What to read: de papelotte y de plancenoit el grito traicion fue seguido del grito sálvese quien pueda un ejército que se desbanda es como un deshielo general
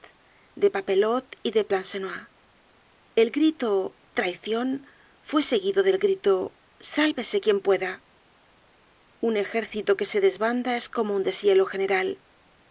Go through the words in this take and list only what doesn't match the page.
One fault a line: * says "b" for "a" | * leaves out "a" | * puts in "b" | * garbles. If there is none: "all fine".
all fine